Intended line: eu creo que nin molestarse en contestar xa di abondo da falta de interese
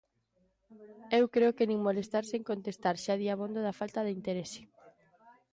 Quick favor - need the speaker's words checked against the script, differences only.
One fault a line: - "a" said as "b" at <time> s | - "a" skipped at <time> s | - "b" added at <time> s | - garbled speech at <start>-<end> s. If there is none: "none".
none